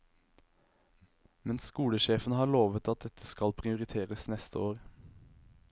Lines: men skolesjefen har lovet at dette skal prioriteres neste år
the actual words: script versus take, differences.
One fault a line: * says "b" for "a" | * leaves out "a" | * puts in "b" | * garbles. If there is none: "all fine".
all fine